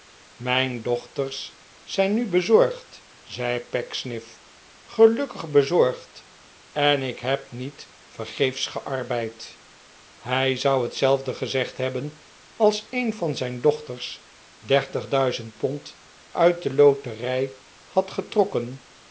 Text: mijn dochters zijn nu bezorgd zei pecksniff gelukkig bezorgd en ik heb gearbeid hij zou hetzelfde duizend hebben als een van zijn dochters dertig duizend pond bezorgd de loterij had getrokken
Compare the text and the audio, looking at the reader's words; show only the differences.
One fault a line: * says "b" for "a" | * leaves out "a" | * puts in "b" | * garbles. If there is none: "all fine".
* puts in "niet vergeefs"
* says "gezegd" for "duizend"
* says "uit" for "bezorgd"